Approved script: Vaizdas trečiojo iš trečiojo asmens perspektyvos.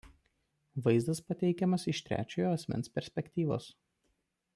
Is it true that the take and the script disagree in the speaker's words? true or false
true